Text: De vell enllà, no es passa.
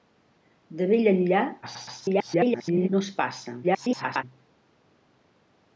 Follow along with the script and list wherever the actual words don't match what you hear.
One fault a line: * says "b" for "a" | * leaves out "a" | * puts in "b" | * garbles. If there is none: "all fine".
* garbles
* garbles